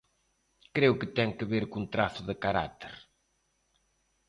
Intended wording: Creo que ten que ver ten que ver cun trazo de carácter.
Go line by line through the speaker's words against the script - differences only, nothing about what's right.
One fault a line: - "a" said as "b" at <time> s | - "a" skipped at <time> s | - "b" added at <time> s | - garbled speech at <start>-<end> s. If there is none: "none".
- "ten que ver" skipped at 1.6 s